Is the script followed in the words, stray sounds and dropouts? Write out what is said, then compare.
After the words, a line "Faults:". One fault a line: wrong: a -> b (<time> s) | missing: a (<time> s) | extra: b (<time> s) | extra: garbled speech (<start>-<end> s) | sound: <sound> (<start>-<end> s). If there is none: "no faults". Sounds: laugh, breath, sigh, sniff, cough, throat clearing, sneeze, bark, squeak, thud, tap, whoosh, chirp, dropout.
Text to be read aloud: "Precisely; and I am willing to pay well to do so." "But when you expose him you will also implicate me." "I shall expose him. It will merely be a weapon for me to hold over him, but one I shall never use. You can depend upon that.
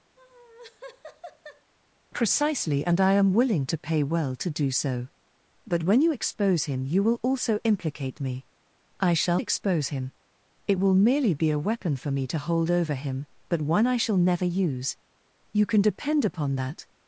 "Precisely; and I am willing to pay well to do so." "But when you expose him you will also implicate me." "I shall expose him. It will merely be a weapon for me to hold over him, but one I shall never use. You can depend upon that.
Faults:
sound: laugh (0.2-1.7 s)